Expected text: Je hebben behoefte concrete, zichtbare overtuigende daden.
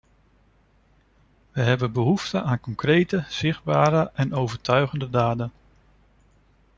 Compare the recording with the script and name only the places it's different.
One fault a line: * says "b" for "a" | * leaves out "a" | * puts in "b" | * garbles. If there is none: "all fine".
* says "We" for "Je"
* puts in "aan"
* puts in "en"